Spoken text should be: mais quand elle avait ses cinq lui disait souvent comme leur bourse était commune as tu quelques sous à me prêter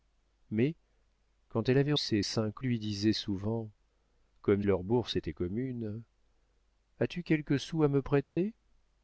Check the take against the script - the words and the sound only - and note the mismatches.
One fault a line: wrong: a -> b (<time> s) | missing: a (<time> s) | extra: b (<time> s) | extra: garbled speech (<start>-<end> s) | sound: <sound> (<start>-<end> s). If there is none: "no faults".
sound: dropout (8.2-8.4 s)